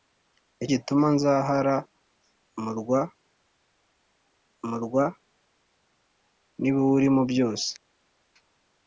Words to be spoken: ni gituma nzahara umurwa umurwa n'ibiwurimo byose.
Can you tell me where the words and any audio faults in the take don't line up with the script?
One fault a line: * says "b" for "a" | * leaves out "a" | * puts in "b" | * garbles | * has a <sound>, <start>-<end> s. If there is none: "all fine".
all fine